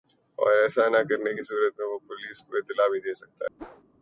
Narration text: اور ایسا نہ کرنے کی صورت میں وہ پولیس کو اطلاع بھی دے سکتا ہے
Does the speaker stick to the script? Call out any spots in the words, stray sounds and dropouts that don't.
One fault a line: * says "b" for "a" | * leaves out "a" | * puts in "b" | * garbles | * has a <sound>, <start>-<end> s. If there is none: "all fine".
* has a whoosh, 3.6-3.8 s